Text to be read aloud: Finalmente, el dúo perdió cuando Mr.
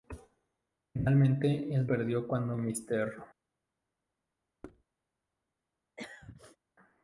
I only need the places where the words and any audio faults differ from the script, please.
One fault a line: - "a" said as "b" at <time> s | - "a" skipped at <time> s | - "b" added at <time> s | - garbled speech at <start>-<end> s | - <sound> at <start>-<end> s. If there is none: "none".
- "dúo" skipped at 1.9 s
- thud at 4.6-4.8 s
- throat clearing at 6.0-6.6 s